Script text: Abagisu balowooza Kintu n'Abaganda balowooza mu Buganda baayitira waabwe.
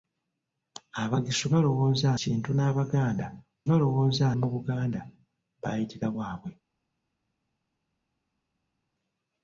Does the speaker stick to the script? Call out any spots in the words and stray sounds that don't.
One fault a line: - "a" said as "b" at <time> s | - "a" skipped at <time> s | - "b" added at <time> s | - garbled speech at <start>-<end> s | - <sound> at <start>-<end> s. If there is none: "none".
none